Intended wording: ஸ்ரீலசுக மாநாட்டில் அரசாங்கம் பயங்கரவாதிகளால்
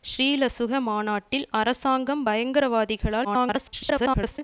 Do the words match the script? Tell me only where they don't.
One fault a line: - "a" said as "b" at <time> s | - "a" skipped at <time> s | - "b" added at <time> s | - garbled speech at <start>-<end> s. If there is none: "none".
- garbled speech at 3.2-4.4 s